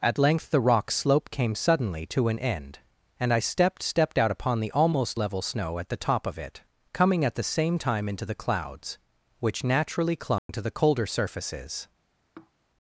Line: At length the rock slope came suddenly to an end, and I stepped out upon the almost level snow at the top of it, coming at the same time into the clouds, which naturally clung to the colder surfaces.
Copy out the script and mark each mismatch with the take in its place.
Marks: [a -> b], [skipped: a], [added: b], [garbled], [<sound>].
At length the rock slope came suddenly to an end, and I stepped [added: stepped] out upon the almost level snow at the top of it, coming at the same time into the clouds, which naturally clung [dropout] to the colder surfaces. [sigh]